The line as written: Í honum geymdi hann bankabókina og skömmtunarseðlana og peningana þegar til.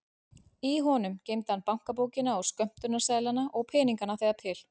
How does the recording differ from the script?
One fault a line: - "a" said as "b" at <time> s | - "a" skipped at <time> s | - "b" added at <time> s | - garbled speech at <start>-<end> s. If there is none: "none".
none